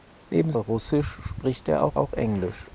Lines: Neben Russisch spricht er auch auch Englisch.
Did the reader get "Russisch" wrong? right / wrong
right